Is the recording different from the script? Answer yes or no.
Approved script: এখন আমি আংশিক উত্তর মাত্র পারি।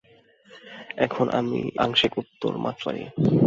no